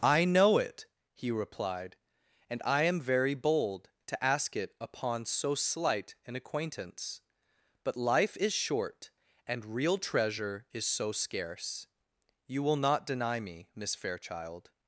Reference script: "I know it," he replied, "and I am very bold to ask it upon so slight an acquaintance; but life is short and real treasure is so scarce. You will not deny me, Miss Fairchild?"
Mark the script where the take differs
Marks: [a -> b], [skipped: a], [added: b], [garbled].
"I know it," he replied, "and I am very bold to ask it upon so slight an acquaintance; but life is short and real treasure is so scarce. You will not deny me, Miss Fairchild?"